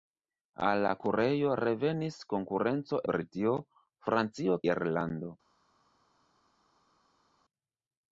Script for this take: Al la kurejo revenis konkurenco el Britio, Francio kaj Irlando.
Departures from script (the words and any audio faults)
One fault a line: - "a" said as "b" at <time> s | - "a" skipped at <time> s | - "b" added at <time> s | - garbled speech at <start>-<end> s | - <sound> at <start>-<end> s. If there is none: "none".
- "el" skipped at 3.0 s
- "kaj" skipped at 4.6 s